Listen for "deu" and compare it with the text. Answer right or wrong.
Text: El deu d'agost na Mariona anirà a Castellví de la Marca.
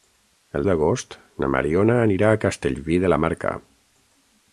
wrong